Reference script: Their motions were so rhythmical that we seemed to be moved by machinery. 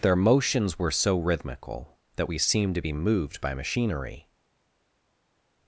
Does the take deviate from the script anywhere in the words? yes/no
no